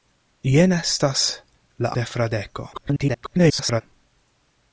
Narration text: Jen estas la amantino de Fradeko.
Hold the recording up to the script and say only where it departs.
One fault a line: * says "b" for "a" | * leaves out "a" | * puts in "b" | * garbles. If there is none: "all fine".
* leaves out "amantino"
* garbles